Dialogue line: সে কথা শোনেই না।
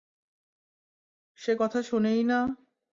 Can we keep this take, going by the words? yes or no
yes